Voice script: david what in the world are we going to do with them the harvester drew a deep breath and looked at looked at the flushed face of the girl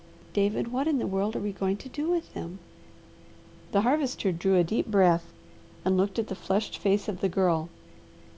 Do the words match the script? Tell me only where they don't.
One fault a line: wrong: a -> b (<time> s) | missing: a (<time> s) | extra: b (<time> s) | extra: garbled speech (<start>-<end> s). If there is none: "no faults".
missing: looked at (6.3 s)